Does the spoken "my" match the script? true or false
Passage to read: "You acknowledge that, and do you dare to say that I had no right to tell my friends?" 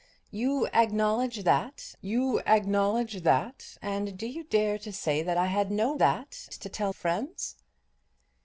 false